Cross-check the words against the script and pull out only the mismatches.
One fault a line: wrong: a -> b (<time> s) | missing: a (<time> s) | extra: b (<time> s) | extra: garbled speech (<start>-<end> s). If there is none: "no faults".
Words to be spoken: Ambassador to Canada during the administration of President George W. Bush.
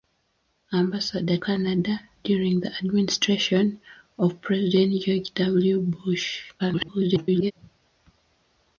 missing: to (1.4 s)
extra: garbled speech (6.6-7.5 s)